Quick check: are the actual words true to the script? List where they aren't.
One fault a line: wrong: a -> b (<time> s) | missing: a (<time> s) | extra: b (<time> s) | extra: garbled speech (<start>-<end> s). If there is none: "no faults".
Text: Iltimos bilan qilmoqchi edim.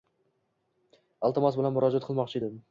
extra: murojaat (1.8 s)